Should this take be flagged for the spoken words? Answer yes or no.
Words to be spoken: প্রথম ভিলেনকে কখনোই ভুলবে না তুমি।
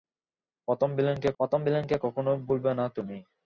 yes